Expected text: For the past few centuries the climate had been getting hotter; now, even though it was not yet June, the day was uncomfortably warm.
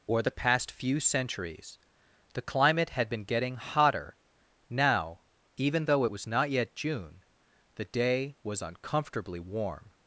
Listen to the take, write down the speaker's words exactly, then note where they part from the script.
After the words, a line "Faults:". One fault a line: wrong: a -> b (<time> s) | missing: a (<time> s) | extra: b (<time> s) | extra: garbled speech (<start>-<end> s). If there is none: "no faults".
Or the past few centuries the climate had been getting hotter; now, even though it was not yet June, the day was uncomfortably warm.
Faults:
wrong: For -> Or (0.1 s)